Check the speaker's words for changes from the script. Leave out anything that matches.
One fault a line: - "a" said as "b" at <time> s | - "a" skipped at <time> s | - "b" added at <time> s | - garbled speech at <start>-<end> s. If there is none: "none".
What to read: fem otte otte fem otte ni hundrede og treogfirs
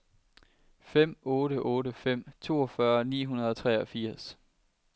- "otte" said as "toogfyrre" at 2.5 s